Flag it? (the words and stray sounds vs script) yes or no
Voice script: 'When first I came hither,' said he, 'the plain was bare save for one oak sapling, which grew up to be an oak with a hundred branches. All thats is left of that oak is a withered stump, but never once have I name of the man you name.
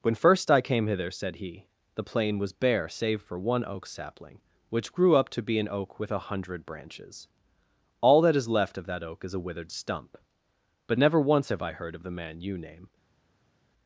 yes